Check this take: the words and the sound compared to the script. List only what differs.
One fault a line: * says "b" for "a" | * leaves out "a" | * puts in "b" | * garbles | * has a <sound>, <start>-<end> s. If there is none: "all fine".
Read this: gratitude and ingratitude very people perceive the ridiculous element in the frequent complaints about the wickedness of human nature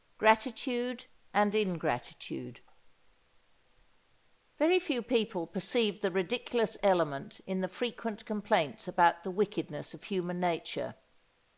* puts in "few"